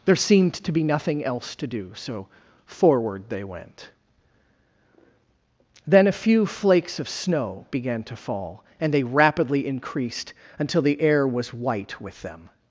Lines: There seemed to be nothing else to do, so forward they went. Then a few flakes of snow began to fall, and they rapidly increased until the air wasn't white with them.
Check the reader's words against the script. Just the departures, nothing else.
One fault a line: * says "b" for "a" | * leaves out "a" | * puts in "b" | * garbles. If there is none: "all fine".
* says "was" for "wasn't"